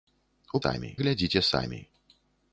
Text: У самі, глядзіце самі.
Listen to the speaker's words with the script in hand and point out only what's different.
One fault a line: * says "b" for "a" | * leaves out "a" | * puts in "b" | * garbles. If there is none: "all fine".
all fine